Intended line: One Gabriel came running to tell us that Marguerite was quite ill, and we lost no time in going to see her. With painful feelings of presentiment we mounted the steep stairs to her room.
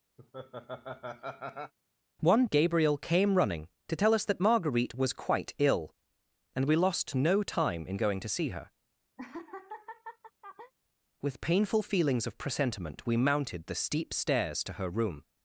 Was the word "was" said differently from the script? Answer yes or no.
no